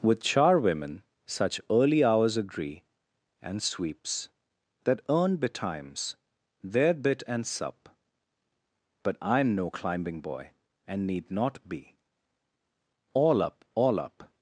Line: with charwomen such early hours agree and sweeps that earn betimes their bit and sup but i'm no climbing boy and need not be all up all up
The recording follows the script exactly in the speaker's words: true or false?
true